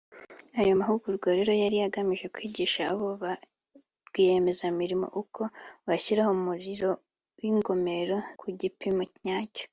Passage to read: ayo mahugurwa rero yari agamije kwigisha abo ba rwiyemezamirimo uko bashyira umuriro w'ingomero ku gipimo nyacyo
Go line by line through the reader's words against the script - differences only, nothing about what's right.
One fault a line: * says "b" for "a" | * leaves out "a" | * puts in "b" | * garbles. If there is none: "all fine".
all fine